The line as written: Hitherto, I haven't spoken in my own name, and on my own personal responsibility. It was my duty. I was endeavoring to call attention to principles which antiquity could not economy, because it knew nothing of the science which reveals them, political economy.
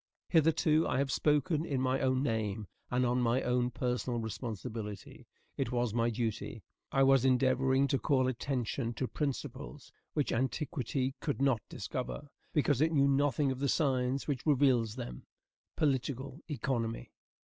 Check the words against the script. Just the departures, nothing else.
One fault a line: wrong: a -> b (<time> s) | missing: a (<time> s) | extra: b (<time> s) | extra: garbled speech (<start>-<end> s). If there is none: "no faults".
wrong: haven't -> have (1.0 s)
wrong: economy -> discover (11.7 s)